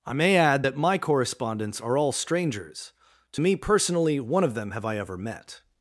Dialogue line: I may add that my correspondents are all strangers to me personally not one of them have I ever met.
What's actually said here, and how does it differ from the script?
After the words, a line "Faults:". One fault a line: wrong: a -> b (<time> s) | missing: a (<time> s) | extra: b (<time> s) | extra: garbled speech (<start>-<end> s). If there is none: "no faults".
I may add that my correspondents are all strangers to me personally one of them have I ever met.
Faults:
missing: not (4.2 s)